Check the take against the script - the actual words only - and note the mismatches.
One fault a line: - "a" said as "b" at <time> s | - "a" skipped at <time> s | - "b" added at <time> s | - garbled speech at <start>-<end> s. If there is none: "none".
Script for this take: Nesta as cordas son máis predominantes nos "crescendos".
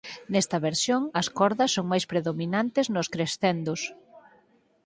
- "versión" added at 0.7 s